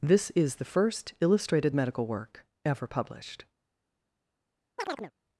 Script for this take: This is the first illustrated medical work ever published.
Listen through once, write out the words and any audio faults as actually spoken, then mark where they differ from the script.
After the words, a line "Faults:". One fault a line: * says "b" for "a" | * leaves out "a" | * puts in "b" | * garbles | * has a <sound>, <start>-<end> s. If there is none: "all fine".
This is the first illustrated medical work ever published.
Faults:
* has a chirp, 4.8-5.1 s